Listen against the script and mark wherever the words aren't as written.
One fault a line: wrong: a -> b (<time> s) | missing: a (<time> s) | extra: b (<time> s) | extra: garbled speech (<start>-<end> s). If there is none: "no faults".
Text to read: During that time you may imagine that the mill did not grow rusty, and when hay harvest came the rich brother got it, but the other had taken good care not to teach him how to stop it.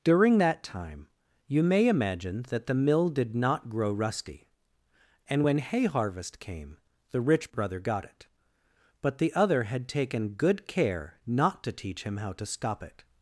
no faults